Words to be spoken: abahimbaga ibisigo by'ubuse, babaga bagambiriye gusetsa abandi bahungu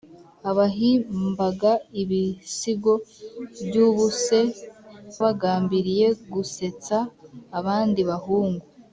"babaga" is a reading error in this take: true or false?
true